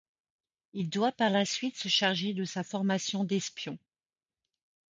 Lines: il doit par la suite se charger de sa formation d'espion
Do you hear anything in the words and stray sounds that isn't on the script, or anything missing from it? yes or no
no